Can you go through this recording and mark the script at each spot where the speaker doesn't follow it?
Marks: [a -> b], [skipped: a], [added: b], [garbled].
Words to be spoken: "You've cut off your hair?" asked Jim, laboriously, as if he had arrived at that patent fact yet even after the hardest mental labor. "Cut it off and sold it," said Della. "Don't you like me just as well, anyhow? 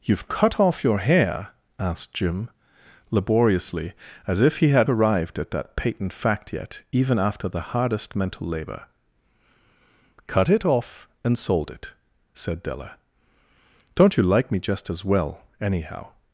"You've cut off your hair?" asked Jim, laboriously, as if he had arrived at that patent fact yet even after the hardest mental labor. "Cut it off and sold it," said Della. "Don't you like me just as well, anyhow?